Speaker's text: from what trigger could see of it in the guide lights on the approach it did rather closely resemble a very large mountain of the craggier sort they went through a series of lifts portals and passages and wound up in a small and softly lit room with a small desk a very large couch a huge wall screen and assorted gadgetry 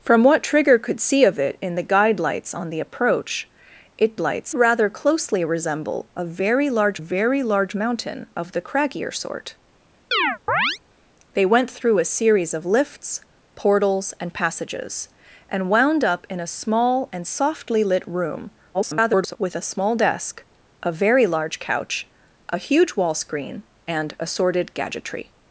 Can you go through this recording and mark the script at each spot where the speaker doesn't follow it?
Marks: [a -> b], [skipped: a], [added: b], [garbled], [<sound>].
from what trigger could see of it in the guide lights on the approach it [did -> lights] rather closely resemble a very large [added: very large] mountain of the craggier sort [chirp] they went through a series of lifts portals and passages and wound up in a small and softly lit room [garbled] with a small desk a very large couch a huge wall screen and assorted gadgetry